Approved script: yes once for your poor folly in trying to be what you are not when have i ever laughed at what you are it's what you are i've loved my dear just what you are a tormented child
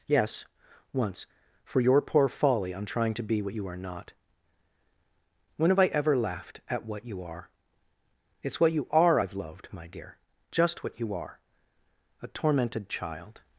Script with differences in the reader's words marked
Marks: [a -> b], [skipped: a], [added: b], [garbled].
yes once for your poor folly [in -> on] trying to be what you are not when have i ever laughed at what you are it's what you are i've loved my dear just what you are a tormented child